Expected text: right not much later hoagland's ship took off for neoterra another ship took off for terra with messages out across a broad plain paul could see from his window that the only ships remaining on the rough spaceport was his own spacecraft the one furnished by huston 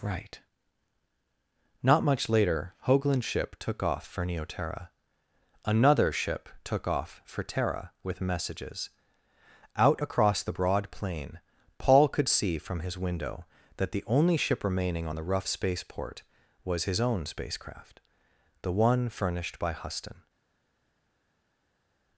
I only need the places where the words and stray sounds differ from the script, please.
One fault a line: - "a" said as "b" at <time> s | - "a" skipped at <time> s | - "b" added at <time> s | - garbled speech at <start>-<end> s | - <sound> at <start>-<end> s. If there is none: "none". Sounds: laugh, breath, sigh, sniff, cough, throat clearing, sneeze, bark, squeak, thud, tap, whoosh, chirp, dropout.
- "a" said as "the" at 10.4 s
- "ships" said as "ship" at 14.4 s